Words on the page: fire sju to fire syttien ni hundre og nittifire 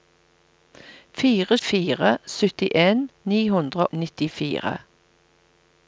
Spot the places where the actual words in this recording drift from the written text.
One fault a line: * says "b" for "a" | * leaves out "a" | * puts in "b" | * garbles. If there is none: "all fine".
* leaves out "sju to"
* leaves out "og"